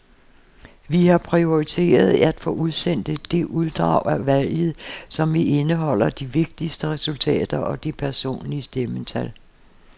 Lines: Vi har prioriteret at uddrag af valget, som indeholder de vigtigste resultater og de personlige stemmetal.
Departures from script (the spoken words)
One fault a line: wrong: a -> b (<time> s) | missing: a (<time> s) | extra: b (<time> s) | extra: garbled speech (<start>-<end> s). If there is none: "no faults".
extra: få udsendt det (2.4 s)